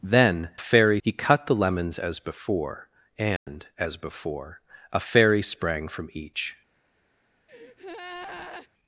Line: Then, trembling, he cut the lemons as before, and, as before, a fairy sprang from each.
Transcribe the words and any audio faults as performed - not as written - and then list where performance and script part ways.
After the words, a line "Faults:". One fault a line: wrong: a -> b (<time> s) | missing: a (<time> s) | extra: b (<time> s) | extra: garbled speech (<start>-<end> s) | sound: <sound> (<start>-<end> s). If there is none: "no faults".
Then, fairy, he cut the lemons as before, and, as before, a fairy sprang from each.
Faults:
wrong: trembling -> fairy (0.6 s)
sound: dropout (3.4-3.5 s)
sound: breath (7.5-8.7 s)